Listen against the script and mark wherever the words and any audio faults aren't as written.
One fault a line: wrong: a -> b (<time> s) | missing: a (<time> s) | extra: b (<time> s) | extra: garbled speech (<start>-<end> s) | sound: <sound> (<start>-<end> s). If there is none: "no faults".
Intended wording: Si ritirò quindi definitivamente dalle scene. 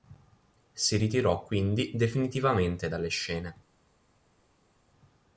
no faults